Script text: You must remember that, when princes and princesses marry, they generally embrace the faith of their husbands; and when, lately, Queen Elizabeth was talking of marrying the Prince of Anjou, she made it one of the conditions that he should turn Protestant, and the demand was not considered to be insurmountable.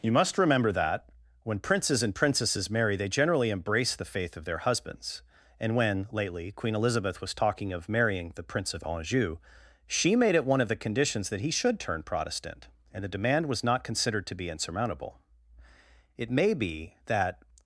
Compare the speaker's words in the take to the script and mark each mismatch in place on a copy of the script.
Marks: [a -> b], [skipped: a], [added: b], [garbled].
You must remember that, when princes and princesses marry, they generally embrace the faith of their husbands; and when, lately, Queen Elizabeth was talking of marrying the Prince of Anjou, she made it one of the conditions that he should turn Protestant, and the demand was not considered to be insurmountable. [added: It may be that]